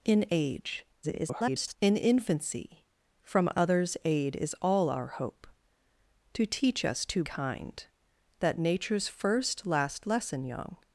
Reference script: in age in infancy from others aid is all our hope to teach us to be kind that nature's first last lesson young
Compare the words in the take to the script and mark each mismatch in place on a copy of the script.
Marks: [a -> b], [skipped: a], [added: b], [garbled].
in age [garbled] in infancy from others aid is all our hope to teach us to [skipped: be] kind that nature's first last lesson young